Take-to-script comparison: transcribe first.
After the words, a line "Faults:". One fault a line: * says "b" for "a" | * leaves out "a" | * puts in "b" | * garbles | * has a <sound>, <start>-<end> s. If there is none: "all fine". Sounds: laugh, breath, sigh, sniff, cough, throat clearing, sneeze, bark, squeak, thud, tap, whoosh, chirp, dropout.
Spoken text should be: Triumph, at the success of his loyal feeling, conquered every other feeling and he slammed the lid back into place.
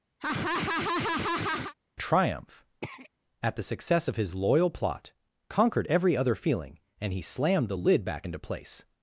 Triumph, at the success of his loyal plot, conquered every other feeling and he slammed the lid back into place.
Faults:
* has a laugh, 0.2-1.7 s
* has a throat clearing, 2.8-3.1 s
* says "plot" for "feeling"